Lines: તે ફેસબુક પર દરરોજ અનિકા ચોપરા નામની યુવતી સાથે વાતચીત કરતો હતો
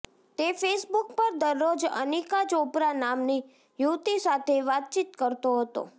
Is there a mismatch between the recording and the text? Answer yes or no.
no